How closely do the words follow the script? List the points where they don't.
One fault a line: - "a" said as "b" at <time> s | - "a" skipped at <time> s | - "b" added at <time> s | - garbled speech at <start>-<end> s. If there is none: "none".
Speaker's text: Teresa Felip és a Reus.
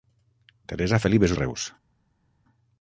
none